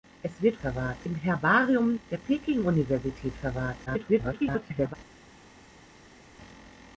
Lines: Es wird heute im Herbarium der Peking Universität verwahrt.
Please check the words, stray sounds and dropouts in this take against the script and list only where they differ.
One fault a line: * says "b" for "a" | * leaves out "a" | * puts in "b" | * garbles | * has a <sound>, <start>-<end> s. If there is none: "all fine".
* says "verwahrt" for "heute"
* garbles